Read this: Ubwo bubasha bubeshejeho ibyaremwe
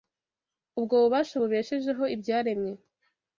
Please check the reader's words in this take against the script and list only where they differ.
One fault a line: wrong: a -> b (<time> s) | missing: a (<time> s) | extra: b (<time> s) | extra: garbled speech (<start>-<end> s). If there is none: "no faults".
no faults